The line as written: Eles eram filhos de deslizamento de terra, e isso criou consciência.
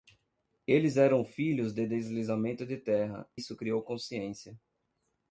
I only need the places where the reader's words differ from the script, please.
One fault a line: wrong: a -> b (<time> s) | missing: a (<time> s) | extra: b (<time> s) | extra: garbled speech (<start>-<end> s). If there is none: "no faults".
missing: e (3.3 s)